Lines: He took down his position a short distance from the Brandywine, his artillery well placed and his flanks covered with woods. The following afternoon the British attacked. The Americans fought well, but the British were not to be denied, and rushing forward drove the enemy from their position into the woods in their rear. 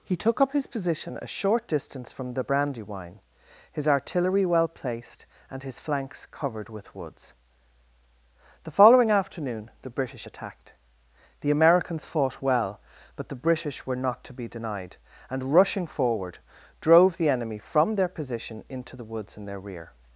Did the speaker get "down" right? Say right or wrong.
wrong